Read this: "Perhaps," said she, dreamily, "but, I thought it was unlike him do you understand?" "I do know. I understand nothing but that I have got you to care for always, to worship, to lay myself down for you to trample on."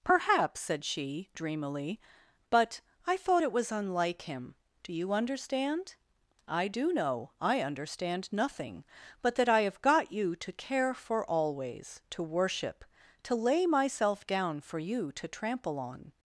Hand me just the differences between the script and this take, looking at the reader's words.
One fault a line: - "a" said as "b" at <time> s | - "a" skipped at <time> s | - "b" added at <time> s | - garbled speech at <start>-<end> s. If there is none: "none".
none